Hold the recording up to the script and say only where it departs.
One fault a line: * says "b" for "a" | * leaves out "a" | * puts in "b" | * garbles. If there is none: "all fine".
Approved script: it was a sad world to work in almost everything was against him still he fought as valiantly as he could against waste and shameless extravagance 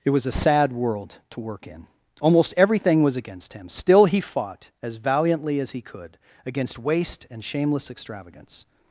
all fine